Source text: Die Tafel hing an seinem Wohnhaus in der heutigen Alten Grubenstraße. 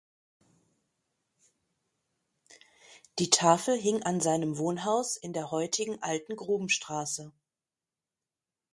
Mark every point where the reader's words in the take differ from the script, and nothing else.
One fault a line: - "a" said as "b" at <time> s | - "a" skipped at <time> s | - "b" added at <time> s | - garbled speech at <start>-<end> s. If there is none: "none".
none